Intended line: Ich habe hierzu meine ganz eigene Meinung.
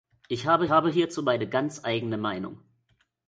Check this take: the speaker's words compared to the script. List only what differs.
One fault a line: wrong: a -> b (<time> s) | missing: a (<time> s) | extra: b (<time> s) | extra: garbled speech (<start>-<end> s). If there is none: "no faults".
extra: habe (0.7 s)